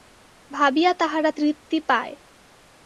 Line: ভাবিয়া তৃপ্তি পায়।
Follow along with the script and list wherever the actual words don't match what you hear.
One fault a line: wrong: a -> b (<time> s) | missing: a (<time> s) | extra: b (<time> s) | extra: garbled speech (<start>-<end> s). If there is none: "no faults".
extra: তাহারা (0.9 s)